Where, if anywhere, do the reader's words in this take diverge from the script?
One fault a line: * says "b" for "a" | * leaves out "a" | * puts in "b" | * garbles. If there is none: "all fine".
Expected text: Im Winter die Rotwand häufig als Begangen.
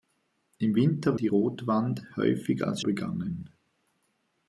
all fine